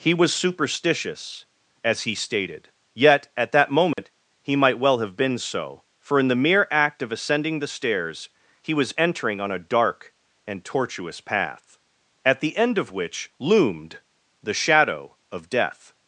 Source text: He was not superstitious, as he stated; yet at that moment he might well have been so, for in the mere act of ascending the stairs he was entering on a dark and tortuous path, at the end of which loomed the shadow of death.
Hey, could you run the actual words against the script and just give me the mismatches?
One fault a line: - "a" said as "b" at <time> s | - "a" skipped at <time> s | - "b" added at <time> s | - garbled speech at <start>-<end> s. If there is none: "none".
- "not" skipped at 0.3 s